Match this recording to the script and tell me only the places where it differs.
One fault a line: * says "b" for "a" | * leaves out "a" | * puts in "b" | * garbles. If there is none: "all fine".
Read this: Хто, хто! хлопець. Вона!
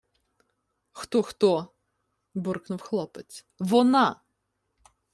* puts in "буркнув"